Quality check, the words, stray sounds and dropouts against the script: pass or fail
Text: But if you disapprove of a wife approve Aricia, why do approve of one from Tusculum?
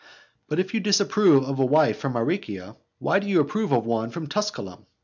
fail